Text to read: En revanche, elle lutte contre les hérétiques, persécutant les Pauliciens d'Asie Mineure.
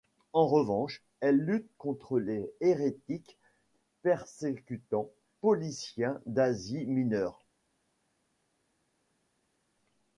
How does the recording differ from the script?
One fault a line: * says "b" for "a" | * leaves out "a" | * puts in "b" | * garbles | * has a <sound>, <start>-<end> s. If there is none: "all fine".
* leaves out "les"